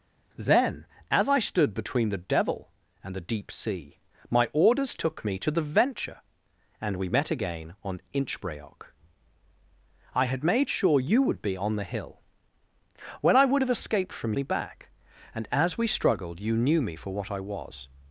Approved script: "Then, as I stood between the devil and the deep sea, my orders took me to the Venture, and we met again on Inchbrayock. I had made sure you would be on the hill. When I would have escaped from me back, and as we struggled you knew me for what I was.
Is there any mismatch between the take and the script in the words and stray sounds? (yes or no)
no